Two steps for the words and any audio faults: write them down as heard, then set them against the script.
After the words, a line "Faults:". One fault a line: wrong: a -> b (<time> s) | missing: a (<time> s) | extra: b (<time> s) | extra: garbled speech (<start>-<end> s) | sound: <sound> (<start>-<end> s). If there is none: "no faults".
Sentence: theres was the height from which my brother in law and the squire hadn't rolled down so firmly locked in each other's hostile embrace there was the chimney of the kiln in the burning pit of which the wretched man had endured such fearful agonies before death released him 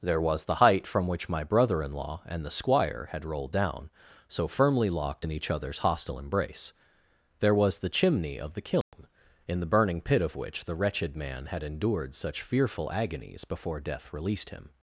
there was the height from which my brother in law and the squire had rolled down so firmly locked in each other's hostile embrace there was the chimney of the kiln in the burning pit of which the wretched man had endured such fearful agonies before death released him
Faults:
wrong: theres -> there (0.0 s)
wrong: hadn't -> had (3.1 s)
sound: dropout (8.8-8.9 s)